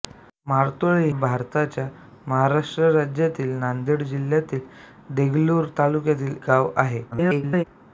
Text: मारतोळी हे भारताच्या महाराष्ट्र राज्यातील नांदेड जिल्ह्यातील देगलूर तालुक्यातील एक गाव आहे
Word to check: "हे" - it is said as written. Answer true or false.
false